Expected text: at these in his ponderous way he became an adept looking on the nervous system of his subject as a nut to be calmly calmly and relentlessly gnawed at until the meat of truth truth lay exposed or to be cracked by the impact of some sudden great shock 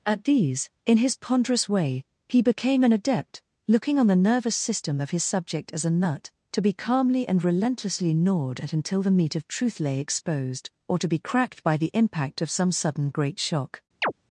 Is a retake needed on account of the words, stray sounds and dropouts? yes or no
yes